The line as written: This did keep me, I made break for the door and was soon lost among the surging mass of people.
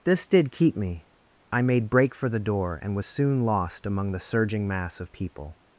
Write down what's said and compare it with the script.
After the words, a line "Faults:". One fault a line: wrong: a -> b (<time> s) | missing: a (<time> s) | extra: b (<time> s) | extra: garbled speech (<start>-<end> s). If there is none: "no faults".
This did keep me, I made break for the door and was soon lost among the surging mass of people.
Faults:
no faults